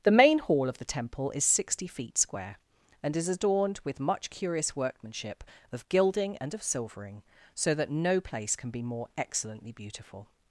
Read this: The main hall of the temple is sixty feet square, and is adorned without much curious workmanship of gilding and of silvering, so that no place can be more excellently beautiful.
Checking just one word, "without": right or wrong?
wrong